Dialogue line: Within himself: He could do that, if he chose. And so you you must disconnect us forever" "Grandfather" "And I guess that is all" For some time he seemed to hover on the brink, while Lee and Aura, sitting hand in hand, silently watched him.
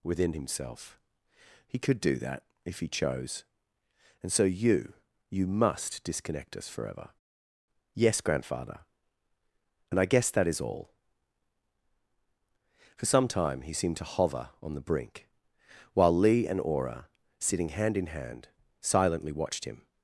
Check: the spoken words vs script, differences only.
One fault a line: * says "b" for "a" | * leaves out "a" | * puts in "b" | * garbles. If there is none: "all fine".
* puts in "Yes"